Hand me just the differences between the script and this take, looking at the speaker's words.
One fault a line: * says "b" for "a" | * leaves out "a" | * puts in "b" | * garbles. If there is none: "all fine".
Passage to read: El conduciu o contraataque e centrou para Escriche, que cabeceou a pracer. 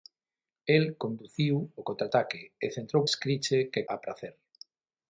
* leaves out "para"
* leaves out "cabeceou"